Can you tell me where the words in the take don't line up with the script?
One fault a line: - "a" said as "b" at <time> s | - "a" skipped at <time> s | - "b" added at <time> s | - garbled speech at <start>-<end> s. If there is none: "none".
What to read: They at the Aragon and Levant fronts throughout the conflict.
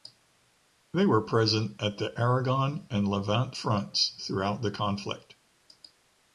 - "were present" added at 1.1 s